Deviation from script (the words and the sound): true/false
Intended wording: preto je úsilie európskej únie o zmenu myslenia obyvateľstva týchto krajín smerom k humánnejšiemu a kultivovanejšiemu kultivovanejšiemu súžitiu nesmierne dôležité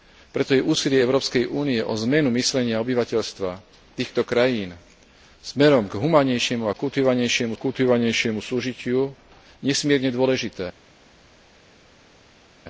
false